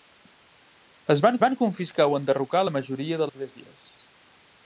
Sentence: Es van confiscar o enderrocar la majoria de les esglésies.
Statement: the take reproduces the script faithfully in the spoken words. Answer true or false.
false